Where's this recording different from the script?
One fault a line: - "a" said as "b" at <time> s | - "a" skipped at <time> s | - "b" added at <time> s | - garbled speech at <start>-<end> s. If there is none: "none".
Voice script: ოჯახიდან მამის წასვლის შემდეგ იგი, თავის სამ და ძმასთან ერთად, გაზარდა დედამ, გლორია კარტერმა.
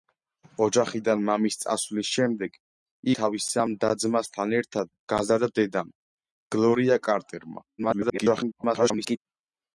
- "იგი" skipped at 2.6 s
- garbled speech at 7.8-9.2 s